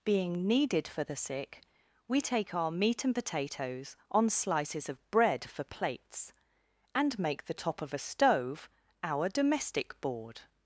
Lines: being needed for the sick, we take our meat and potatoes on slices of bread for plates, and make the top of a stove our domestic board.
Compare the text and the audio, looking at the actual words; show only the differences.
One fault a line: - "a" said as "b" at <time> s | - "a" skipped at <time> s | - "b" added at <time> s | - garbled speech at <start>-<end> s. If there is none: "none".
none